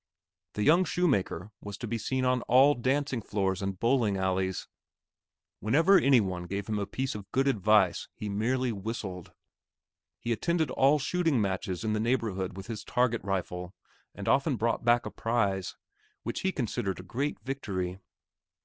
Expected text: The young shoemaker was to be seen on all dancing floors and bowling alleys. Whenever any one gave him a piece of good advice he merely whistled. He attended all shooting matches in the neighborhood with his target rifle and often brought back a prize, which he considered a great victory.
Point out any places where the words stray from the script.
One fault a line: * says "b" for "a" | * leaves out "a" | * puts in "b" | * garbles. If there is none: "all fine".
all fine